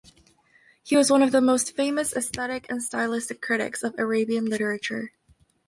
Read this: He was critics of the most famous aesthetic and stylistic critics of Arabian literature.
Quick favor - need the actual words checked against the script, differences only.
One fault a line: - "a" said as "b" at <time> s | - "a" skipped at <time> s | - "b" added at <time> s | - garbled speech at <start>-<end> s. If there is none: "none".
- "critics" said as "one" at 1.1 s